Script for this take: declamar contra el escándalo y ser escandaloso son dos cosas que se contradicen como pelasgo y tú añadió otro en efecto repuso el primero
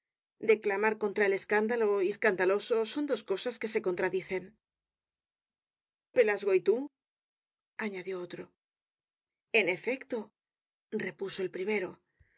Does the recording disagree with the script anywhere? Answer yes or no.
yes